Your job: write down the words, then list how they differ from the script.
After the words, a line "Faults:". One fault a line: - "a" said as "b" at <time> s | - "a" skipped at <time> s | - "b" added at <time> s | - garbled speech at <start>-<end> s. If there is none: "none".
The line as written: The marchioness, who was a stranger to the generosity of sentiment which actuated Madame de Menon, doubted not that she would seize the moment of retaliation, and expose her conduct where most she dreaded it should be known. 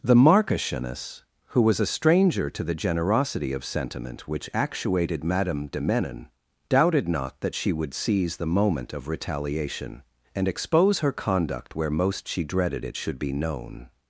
The marchioness, who was a stranger to the generosity of sentiment which actuated Madame de Menon, doubted not that she would seize the moment of retaliation, and expose her conduct where most she dreaded it should be known.
Faults:
none